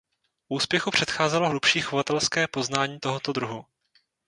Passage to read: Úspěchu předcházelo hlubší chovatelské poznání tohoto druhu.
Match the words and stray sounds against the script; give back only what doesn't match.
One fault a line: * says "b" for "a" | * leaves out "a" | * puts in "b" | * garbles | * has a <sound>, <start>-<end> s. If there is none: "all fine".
all fine